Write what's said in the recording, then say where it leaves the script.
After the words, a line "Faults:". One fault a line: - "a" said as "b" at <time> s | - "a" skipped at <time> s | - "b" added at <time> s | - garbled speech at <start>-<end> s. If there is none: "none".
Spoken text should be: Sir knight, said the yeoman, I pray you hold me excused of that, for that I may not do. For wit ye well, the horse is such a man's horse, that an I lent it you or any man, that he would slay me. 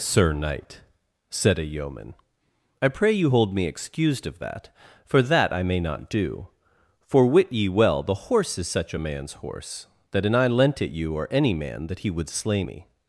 Sir knight, said a yeoman, I pray you hold me excused of that, for that I may not do. For wit ye well, the horse is such a man's horse, that an I lent it you or any man, that he would slay me.
Faults:
- "the" said as "a" at 1.6 s